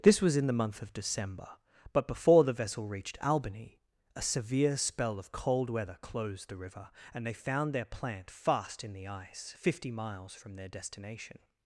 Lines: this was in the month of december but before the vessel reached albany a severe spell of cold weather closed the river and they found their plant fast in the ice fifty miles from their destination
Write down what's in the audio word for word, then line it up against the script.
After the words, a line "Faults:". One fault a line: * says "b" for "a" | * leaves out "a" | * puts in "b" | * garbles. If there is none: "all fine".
this was in the month of december but before the vessel reached albany a severe spell of cold weather closed the river and they found their plant fast in the ice fifty miles from their destination
Faults:
all fine